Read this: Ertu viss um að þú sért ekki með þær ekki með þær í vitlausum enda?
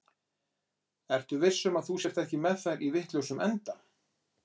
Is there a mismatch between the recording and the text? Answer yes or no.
yes